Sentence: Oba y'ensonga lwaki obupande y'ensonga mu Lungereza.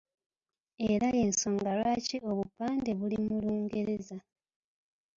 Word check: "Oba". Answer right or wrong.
wrong